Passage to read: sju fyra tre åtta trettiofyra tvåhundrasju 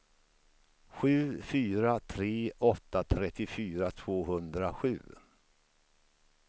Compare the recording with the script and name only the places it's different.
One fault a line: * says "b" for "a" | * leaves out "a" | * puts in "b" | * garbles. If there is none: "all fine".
all fine